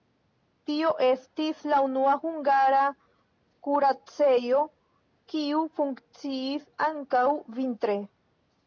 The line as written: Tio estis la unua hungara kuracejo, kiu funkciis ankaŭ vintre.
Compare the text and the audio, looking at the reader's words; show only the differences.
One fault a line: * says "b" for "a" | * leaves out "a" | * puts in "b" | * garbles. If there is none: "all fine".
all fine